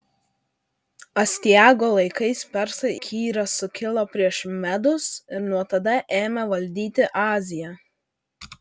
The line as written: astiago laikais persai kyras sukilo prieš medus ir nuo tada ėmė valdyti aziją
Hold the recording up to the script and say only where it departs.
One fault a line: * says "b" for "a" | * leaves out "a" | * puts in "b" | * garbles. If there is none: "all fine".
all fine